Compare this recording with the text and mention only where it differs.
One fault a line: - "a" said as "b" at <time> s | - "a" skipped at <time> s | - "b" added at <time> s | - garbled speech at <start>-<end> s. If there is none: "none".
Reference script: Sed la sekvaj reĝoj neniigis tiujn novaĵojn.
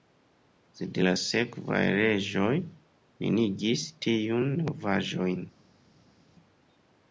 none